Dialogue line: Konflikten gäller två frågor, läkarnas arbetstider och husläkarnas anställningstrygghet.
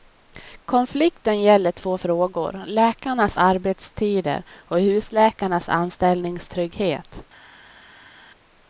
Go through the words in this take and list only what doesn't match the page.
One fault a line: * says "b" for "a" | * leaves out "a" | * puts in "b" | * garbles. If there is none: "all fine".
all fine